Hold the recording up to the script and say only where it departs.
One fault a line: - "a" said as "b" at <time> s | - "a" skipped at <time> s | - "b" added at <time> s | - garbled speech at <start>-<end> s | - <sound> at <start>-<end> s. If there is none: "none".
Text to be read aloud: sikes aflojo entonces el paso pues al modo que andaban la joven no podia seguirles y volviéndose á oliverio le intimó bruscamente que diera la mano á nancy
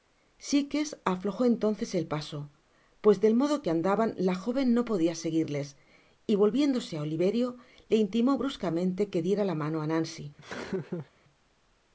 - "al" said as "del" at 3.2 s
- laugh at 10.4-11.1 s